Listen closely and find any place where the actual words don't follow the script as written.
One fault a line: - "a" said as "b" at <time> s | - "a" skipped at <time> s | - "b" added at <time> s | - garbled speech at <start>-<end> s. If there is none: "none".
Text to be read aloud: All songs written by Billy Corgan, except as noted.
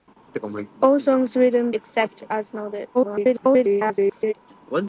- "by Billy Corgan" skipped at 1.7 s
- garbled speech at 2.9-4.3 s